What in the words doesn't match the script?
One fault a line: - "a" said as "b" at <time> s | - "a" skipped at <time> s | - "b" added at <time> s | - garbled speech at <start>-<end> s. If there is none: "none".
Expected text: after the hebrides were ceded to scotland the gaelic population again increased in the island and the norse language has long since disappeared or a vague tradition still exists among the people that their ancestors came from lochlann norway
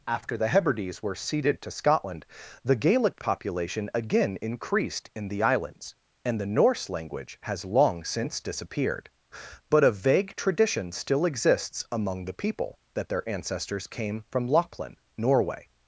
- "island" said as "islands" at 5.4 s
- "or" said as "but" at 9.7 s